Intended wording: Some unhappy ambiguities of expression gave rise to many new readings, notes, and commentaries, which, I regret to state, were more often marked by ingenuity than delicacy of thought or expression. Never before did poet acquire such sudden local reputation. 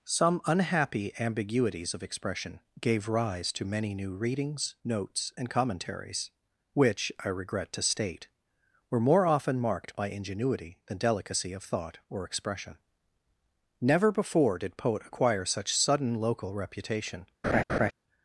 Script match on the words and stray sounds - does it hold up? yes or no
no